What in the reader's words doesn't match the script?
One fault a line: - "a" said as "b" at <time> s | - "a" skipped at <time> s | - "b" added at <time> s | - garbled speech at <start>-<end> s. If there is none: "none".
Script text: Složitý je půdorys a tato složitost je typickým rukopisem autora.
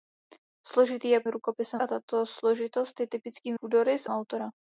- "půdorys" said as "rukopisem" at 1.3 s
- "rukopisem" said as "půdorys" at 3.6 s